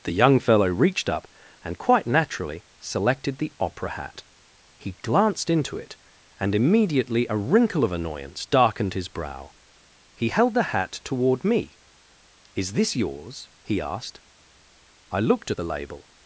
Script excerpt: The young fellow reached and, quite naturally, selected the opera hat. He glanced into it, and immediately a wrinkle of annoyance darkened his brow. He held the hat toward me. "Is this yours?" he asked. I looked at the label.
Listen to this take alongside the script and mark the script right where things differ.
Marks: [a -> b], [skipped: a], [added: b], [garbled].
The young fellow reached [added: up] and, quite naturally, selected the opera hat. He glanced into it, and immediately a wrinkle of annoyance darkened his brow. He held the hat toward me. "Is this yours?" he asked. I looked at the label.